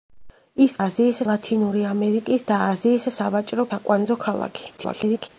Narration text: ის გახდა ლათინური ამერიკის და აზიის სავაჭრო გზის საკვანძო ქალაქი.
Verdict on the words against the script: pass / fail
fail